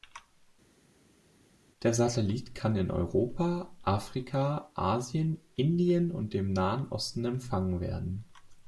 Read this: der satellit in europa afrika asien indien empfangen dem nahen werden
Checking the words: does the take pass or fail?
fail